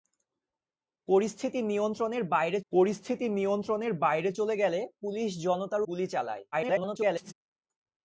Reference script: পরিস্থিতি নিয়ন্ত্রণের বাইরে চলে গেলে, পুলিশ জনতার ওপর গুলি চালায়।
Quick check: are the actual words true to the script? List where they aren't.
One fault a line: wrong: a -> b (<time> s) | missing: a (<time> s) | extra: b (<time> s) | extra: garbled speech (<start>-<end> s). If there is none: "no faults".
extra: পরিস্থিতি নিয়ন্ত্রণের বাইরে (2.7 s)
missing: ওপর (5.8 s)
extra: garbled speech (6.5-7.3 s)